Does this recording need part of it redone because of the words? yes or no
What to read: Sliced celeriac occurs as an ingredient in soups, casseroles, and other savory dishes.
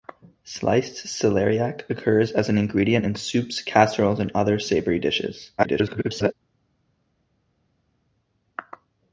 yes